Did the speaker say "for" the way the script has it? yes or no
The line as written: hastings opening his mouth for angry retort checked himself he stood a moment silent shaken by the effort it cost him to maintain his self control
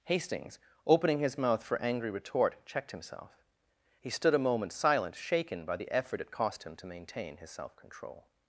yes